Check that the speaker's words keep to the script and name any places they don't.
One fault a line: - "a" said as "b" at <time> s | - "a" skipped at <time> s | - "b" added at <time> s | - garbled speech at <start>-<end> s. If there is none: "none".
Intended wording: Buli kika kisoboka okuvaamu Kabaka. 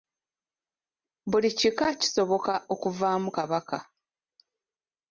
none